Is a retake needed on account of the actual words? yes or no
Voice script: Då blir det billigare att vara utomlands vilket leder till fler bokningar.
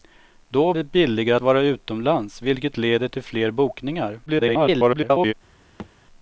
yes